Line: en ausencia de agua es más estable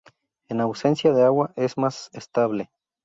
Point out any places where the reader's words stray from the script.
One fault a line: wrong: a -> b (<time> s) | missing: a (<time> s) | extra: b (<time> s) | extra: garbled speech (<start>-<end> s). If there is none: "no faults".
no faults